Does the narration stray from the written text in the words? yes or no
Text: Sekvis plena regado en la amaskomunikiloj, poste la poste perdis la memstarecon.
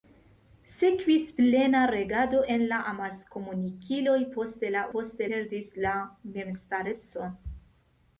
no